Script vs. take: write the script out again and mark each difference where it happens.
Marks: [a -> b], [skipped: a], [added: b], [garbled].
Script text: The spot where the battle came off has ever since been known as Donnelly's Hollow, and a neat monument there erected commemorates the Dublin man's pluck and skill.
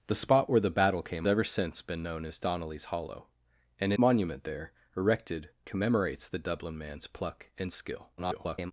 The spot where the battle came [skipped: off has] ever since been known as Donnelly's Hollow, and a [skipped: neat] monument there erected commemorates the Dublin man's pluck and skill. [garbled]